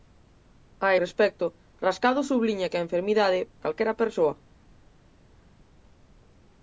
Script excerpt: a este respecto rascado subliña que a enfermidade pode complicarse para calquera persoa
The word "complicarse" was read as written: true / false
false